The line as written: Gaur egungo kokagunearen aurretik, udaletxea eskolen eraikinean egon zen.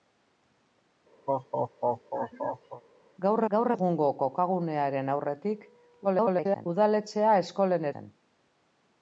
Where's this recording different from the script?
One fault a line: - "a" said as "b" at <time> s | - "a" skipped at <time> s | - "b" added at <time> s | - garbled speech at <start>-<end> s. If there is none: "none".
- "gaur" added at 3.5 s
- garbled speech at 6.0-6.7 s
- "eraikinean egon" skipped at 7.9 s